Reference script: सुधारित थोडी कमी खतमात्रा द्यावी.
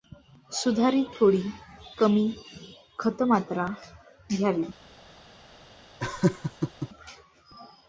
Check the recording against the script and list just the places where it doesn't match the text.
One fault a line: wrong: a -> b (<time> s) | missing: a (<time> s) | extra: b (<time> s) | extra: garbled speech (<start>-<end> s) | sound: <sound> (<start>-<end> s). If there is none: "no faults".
sound: laugh (6.0-6.9 s)